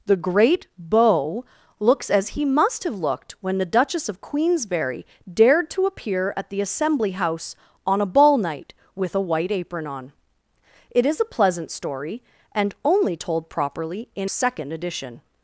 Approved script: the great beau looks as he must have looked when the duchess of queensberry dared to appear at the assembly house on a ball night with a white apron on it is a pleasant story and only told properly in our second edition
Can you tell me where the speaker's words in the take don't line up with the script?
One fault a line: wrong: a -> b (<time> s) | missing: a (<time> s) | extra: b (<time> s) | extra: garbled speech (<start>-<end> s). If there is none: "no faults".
missing: our (14.3 s)